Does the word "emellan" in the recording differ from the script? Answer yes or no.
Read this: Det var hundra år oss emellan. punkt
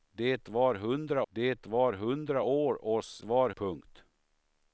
yes